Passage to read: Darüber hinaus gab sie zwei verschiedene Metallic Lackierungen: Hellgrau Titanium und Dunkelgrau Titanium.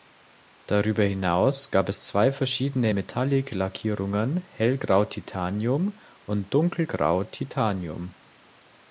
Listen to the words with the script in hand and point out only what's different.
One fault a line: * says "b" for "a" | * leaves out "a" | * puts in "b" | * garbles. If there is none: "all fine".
* says "es" for "sie"